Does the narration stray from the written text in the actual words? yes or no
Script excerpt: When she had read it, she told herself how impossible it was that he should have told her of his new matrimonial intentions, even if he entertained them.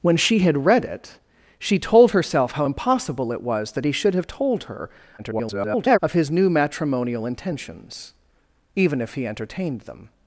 yes